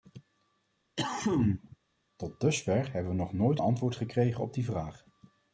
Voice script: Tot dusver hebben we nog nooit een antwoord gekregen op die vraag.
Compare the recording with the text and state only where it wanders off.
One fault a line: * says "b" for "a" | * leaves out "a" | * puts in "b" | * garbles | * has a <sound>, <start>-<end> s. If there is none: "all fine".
* has a cough, 1.0-1.8 s
* leaves out "een"